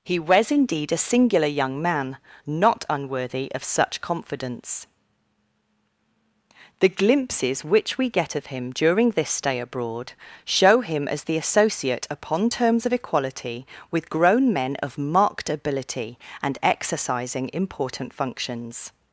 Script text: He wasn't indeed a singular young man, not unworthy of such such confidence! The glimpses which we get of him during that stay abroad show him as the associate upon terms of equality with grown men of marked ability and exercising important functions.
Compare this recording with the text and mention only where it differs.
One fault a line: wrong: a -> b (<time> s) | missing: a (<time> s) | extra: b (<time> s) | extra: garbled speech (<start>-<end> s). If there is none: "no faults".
wrong: wasn't -> was (0.2 s)
missing: such (4.0 s)
wrong: that -> this (9.1 s)